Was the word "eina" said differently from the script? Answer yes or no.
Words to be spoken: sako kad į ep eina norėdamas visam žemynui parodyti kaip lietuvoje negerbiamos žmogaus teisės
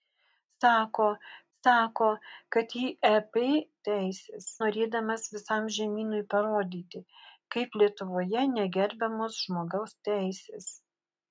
yes